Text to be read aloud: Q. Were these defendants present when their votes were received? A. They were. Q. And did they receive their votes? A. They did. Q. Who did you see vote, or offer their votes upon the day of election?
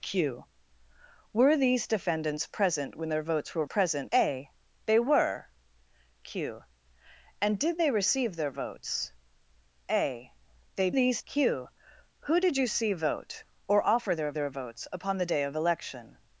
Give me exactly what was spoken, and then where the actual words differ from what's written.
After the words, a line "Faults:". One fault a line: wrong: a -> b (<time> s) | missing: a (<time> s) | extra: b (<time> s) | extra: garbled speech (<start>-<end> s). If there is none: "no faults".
Q. Were these defendants present when their votes were present? A. They were. Q. And did they receive their votes? A. They these. Q. Who did you see vote, or offer their their votes upon the day of election?
Faults:
wrong: received -> present (3.6 s)
wrong: did -> these (10.9 s)
extra: their (14.3 s)